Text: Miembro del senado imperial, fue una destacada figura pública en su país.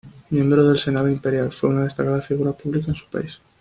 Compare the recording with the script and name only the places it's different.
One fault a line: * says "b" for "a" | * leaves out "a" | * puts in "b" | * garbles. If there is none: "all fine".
all fine